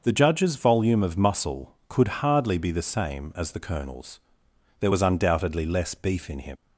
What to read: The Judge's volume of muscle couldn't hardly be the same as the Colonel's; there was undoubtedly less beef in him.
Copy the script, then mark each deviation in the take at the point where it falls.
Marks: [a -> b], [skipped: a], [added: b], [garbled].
The Judge's volume of muscle [couldn't -> could] hardly be the same as the Colonel's; there was undoubtedly less beef in him.